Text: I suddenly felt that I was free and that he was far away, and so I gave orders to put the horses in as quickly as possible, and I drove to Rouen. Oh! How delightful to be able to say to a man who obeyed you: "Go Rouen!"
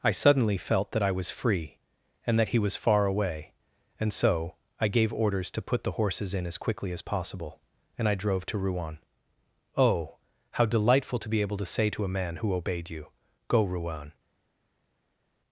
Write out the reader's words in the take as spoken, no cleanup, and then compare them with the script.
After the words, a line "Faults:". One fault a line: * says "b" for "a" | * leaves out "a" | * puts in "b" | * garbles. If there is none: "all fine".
I suddenly felt that I was free and that he was far away, and so I gave orders to put the horses in as quickly as possible, and I drove to Rouen. Oh! How delightful to be able to say to a man who obeyed you: "Go Rouen!"
Faults:
all fine